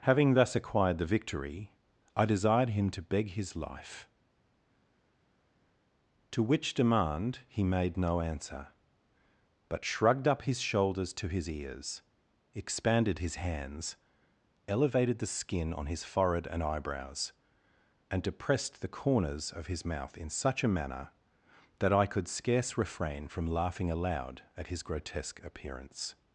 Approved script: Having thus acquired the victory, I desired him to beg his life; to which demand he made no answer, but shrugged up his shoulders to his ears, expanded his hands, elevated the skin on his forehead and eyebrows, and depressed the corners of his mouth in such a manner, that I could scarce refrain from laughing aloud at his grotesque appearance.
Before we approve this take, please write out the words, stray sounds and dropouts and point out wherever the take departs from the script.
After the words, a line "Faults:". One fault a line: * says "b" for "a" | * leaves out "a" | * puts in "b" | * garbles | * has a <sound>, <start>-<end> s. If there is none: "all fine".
Having thus acquired the victory, I desired him to beg his life; to which demand he made no answer, but shrugged up his shoulders to his ears, expanded his hands, elevated the skin on his forehead and eyebrows, and depressed the corners of his mouth in such a manner, that I could scarce refrain from laughing aloud at his grotesque appearance.
Faults:
all fine